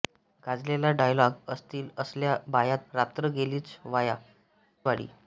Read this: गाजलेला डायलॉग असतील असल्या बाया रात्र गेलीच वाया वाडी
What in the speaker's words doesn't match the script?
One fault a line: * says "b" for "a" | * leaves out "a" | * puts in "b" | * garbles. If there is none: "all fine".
all fine